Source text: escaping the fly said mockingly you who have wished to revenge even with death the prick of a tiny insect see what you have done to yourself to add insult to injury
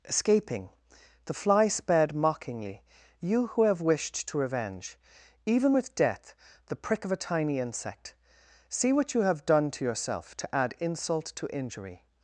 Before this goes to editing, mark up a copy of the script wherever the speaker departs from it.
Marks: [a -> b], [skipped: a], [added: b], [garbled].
escaping the fly [said -> sped] mockingly you who have wished to revenge even with death the prick of a tiny insect see what you have done to yourself to add insult to injury